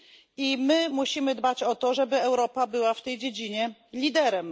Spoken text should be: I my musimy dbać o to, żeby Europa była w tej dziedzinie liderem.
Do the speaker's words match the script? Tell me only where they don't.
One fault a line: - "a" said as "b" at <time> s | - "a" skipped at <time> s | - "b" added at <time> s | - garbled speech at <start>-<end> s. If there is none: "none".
none